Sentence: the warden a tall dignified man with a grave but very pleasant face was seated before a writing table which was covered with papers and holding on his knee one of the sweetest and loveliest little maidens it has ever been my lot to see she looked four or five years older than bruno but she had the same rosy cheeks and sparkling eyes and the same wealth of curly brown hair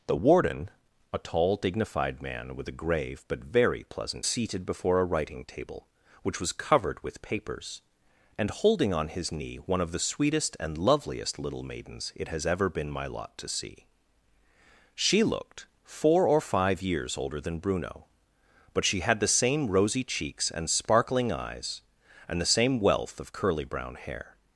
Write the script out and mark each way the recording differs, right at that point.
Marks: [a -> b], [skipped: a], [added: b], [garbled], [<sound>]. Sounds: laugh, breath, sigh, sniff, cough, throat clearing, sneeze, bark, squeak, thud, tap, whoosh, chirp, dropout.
the warden a tall dignified man with a grave but very pleasant [skipped: face was] seated before a writing table which was covered with papers and holding on his knee one of the sweetest and loveliest little maidens it has ever been my lot to see she looked four or five years older than bruno but she had the same rosy cheeks and sparkling eyes and the same wealth of curly brown hair